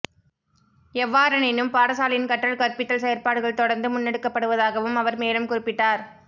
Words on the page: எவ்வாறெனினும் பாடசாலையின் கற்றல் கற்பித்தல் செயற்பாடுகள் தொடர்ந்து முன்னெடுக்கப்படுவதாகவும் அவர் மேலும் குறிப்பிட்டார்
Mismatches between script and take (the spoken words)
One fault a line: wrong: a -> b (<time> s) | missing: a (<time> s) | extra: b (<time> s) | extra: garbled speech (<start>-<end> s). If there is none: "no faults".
no faults